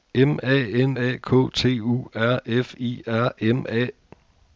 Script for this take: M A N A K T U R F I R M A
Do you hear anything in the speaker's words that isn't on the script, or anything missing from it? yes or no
no